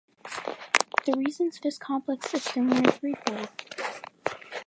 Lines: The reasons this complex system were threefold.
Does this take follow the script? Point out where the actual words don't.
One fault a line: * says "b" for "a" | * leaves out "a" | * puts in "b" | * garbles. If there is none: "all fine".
all fine